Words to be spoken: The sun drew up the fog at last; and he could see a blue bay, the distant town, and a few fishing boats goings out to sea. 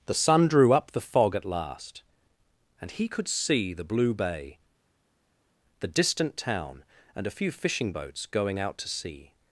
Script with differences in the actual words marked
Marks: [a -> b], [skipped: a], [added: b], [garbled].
The sun drew up the fog at last; and he could see [a -> the] blue bay, the distant town, and a few fishing boats [goings -> going] out to sea.